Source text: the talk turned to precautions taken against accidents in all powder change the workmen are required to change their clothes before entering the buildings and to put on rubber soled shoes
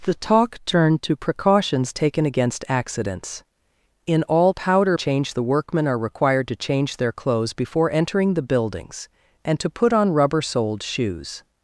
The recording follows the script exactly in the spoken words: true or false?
true